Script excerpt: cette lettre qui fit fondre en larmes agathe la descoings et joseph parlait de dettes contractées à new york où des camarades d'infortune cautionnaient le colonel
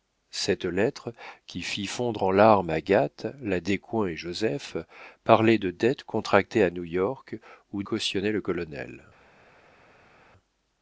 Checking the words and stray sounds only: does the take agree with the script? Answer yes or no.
no